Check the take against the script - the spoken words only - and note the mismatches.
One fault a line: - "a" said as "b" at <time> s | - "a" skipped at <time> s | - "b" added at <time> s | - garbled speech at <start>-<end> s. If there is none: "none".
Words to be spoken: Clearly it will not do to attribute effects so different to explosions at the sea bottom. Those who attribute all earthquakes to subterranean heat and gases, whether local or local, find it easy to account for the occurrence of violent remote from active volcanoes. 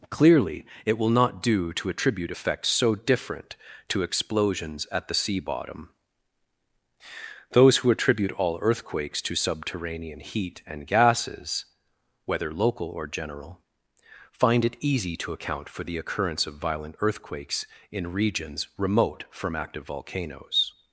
- "local" said as "general" at 13.1 s
- "earthquakes in regions" added at 17.0 s